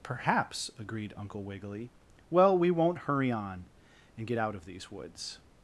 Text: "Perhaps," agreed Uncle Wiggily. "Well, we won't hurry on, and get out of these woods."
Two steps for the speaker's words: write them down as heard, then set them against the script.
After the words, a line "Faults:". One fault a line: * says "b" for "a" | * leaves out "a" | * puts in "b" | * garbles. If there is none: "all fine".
"Perhaps," agreed Uncle Wiggily. "Well, we won't hurry on, and get out of these woods."
Faults:
all fine